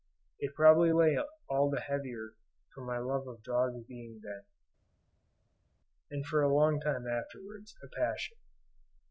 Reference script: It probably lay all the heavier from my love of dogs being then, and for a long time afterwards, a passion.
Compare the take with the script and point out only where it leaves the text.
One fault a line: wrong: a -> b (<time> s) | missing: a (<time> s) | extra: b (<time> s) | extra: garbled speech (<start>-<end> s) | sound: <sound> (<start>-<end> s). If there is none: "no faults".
no faults